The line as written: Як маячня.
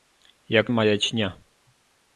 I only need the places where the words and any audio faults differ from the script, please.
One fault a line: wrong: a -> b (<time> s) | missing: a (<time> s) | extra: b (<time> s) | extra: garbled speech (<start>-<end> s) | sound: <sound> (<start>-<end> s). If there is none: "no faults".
no faults